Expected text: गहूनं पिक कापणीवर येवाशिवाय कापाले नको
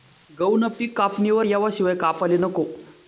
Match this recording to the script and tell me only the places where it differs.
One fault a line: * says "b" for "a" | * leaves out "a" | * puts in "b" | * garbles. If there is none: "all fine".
all fine